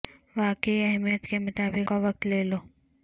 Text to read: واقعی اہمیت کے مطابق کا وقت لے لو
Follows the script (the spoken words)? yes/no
yes